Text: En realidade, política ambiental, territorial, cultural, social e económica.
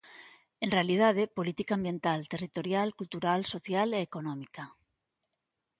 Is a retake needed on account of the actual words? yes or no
no